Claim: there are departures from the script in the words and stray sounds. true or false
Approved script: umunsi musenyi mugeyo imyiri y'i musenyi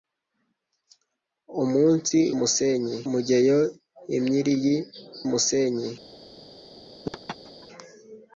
true